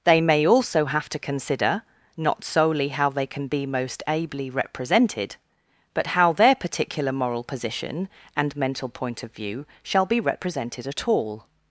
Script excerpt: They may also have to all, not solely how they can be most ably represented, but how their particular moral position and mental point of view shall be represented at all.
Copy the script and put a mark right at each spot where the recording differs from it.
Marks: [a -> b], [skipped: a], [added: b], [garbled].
They may also have to [all, -> consider] not solely how they can be most ably represented, but how their particular moral position and mental point of view shall be represented at all.